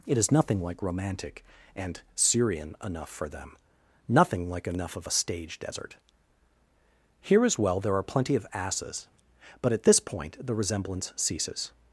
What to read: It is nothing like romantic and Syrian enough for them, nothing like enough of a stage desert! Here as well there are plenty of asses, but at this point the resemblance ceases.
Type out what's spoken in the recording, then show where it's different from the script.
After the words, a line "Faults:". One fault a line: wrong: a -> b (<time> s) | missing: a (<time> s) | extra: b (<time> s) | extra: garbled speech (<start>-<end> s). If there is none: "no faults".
It is nothing like romantic and Syrian enough for them, nothing like enough of a stage desert! Here as well there are plenty of asses, but at this point the resemblance ceases.
Faults:
no faults